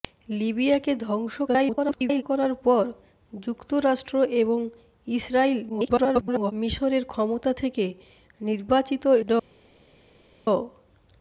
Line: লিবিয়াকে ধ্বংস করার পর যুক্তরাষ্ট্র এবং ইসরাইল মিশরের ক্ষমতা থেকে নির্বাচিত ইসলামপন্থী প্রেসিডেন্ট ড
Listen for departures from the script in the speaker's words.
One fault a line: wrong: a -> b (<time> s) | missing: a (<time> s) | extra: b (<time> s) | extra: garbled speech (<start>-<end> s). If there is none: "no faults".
extra: garbled speech (1.5-2.2 s)
extra: garbled speech (5.7-6.5 s)
missing: ইসলামপন্থী প্রেসিডেন্ট (9.0 s)